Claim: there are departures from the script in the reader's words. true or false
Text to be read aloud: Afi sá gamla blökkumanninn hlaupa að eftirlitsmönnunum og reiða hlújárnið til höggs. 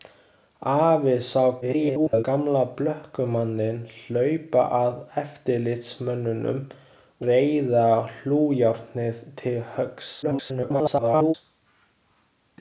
true